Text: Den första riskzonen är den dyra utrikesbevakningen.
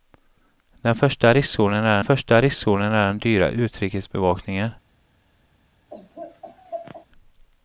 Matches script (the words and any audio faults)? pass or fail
fail